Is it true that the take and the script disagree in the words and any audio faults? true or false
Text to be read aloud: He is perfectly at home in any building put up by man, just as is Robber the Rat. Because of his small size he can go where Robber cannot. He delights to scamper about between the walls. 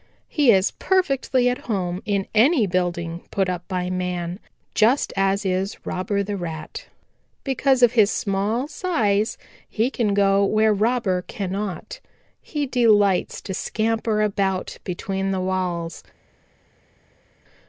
false